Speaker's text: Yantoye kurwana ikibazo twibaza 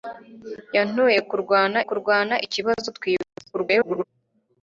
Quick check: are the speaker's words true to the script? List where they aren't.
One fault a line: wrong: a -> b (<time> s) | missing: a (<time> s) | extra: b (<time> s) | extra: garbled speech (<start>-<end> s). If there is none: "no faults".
extra: kurwana (1.9 s)
extra: garbled speech (3.5-4.0 s)